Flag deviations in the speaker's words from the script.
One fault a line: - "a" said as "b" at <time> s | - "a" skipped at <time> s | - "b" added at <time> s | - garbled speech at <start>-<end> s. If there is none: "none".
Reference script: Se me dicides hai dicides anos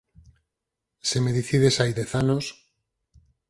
- "dicides" said as "dez" at 2.0 s